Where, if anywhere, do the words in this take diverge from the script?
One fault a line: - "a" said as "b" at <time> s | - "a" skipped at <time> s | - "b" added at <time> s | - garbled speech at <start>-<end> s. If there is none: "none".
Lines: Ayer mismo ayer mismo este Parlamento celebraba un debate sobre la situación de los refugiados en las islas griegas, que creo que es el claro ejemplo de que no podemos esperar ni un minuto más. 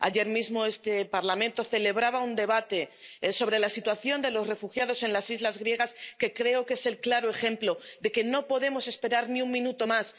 - "ayer mismo" skipped at 0.7 s